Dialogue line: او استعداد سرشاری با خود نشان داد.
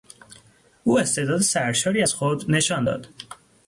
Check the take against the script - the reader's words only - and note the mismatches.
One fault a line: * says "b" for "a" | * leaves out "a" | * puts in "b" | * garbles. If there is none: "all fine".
* says "از" for "با"